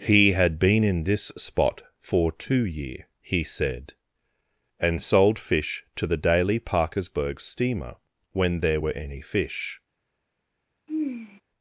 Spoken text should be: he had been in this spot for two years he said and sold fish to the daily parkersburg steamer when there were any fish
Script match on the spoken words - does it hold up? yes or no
no